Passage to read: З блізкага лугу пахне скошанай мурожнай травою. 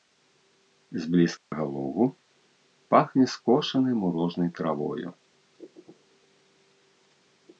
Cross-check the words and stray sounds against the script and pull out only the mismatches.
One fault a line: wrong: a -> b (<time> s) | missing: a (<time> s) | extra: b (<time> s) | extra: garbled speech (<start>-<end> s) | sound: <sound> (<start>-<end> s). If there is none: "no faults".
sound: dropout (1.4-1.5 s)